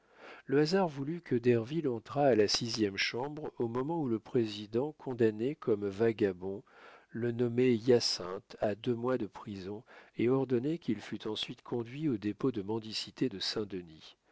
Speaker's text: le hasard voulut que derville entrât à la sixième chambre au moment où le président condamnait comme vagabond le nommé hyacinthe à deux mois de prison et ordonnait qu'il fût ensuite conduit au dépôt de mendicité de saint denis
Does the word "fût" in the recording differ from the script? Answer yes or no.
no